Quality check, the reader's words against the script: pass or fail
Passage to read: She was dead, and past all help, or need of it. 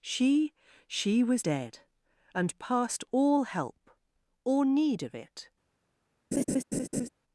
fail